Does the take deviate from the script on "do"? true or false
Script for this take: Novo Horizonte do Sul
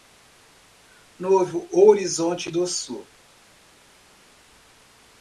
false